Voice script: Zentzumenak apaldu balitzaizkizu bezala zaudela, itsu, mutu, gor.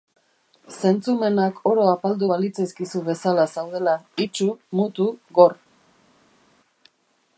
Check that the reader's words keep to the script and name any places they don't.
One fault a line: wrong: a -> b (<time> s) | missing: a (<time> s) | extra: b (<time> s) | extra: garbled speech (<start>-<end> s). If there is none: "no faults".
extra: oro (1.7 s)